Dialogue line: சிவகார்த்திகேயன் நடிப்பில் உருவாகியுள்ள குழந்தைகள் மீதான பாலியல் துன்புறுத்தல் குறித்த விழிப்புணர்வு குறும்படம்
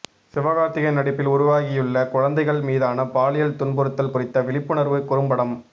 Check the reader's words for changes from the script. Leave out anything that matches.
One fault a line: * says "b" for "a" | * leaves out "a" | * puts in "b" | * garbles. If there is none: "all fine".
all fine